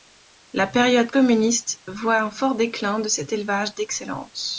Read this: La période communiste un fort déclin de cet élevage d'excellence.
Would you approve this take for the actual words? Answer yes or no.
no